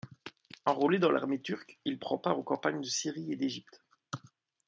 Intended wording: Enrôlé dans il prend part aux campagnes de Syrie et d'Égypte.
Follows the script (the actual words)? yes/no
no